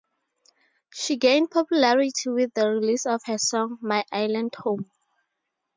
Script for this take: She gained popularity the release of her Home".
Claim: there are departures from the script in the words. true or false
true